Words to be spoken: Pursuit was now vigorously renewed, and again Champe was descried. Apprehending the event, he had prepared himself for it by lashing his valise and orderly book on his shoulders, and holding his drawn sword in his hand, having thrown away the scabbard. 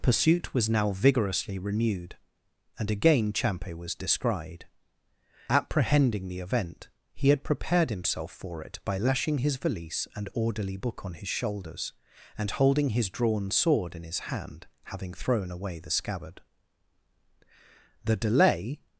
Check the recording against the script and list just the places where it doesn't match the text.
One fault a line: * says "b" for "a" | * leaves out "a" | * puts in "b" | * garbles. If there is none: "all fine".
* puts in "The delay"